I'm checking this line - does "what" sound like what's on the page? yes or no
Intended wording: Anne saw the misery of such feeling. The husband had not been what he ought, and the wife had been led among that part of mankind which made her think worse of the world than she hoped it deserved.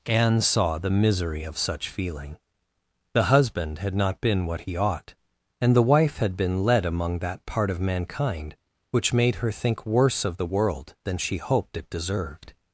yes